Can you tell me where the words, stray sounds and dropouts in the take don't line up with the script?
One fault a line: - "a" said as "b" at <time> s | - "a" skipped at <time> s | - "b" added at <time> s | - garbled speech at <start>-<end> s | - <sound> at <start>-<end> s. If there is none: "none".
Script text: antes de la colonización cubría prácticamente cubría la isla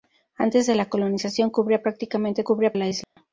- dropout at 3.0-3.2 s